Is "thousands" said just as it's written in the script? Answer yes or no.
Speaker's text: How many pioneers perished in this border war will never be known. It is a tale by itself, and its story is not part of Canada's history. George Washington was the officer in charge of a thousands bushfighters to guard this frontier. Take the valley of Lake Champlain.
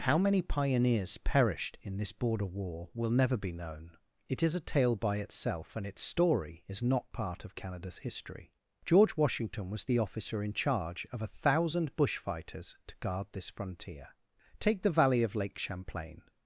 no